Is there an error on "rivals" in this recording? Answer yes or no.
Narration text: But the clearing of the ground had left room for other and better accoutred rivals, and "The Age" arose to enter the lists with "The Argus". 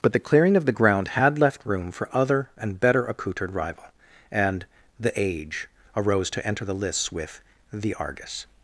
yes